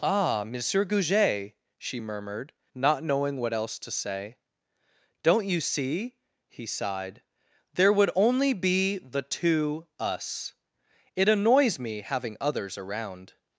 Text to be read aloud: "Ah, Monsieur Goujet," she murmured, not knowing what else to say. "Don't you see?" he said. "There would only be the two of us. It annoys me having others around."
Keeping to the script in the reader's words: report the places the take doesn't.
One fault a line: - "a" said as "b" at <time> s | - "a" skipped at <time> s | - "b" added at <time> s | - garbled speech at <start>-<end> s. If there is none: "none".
- "said" said as "sighed" at 6.7 s
- "of" skipped at 9.9 s